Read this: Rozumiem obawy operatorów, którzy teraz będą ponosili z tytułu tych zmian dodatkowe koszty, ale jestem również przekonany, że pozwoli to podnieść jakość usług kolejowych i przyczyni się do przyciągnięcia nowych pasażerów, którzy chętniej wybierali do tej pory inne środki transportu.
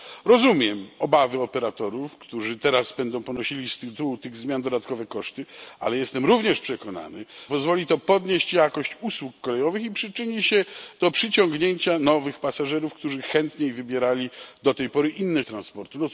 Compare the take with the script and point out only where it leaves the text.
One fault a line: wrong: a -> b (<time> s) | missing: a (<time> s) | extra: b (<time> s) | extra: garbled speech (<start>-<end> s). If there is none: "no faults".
missing: że (7.2 s)
missing: środki (15.4 s)